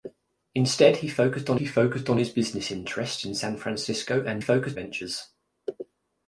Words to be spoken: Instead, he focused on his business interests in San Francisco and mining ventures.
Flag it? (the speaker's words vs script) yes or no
yes